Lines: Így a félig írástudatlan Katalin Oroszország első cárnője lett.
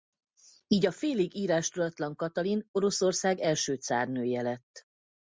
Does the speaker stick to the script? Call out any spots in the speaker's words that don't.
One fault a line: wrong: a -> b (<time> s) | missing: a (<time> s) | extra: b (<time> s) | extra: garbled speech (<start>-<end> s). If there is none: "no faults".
no faults